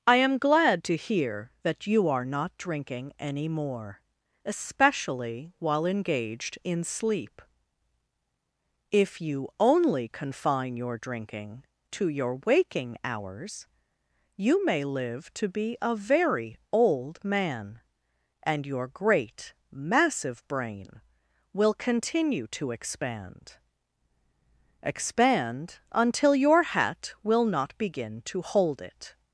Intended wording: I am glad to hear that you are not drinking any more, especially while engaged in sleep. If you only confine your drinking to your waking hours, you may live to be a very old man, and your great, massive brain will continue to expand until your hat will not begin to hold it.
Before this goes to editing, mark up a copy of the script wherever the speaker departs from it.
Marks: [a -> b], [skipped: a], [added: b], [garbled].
I am glad to hear that you are not drinking any more, especially while engaged in sleep. If you only confine your drinking to your waking hours, you may live to be a very old man, and your great, massive brain will continue to expand [added: expand] until your hat will not begin to hold it.